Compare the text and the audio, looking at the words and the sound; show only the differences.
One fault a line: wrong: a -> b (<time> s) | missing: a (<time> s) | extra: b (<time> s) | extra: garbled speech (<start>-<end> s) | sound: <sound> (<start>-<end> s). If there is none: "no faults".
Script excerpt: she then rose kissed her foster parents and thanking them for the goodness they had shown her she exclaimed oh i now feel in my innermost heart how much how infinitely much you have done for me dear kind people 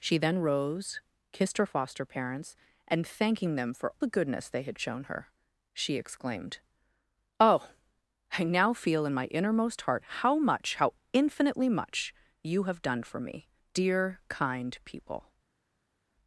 no faults